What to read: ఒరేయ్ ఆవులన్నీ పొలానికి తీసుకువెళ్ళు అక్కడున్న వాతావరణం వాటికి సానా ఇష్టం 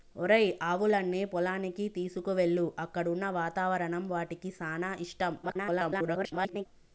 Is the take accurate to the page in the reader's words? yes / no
no